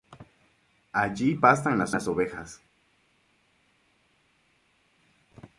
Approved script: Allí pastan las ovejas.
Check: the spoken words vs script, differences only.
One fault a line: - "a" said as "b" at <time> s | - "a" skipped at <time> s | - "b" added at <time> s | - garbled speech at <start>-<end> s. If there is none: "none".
- "las" added at 1.9 s